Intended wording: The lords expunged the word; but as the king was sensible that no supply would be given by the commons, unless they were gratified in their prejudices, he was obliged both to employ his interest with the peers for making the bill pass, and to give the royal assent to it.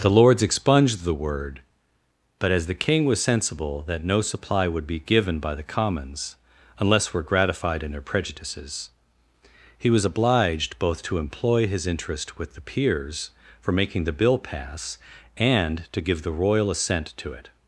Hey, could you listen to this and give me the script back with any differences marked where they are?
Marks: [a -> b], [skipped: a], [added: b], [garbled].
The lords expunged the word; but as the king was sensible that no supply would be given by the commons, unless [skipped: they] were gratified in their prejudices, he was obliged both to employ his interest with the peers for making the bill pass, and to give the royal assent to it.